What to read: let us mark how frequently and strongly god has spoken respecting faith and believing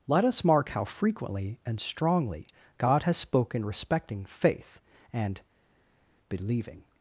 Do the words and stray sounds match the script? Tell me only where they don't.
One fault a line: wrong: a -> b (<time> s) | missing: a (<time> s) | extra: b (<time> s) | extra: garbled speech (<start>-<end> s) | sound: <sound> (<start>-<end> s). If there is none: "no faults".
no faults